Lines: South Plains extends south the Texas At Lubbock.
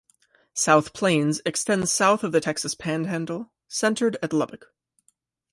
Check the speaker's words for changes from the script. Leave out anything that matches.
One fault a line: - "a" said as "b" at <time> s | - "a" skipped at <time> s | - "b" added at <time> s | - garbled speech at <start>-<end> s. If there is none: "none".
- "of" added at 2.2 s
- "Panhandle centered" added at 2.7 s